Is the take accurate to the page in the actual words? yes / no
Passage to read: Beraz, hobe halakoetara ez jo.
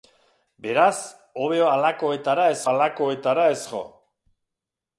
no